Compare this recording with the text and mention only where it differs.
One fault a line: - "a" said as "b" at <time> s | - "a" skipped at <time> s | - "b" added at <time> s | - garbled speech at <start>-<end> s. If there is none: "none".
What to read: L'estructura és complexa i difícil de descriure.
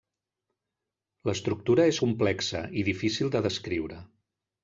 none